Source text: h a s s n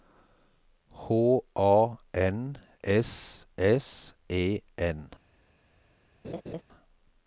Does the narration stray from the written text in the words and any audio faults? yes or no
yes